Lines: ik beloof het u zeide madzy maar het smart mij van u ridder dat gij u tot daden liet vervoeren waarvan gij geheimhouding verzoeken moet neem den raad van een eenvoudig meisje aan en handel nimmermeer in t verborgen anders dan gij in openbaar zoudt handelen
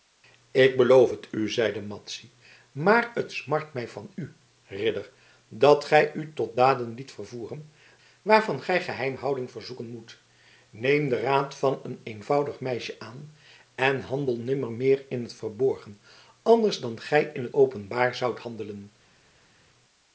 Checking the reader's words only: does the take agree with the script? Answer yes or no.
yes